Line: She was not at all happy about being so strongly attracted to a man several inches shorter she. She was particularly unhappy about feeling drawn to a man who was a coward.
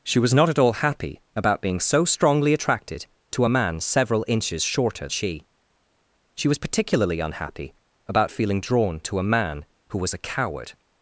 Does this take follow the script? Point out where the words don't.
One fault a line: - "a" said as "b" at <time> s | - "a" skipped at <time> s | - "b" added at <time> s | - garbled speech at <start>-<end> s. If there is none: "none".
none